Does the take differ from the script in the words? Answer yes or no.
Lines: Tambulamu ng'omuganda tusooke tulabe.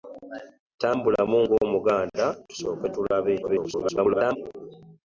yes